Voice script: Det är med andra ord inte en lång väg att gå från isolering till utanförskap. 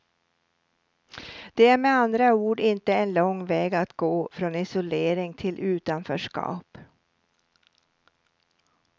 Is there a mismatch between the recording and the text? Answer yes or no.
no